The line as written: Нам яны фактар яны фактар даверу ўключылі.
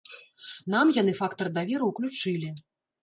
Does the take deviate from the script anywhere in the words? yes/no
yes